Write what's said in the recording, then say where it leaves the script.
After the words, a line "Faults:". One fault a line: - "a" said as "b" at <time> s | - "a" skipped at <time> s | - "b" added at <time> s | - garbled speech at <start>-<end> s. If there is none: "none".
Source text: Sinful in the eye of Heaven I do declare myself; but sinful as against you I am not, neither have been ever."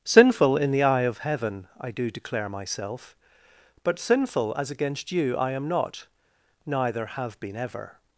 Sinful in the eye of Heaven I do declare myself; but sinful as against you I am not, neither have been ever."
Faults:
none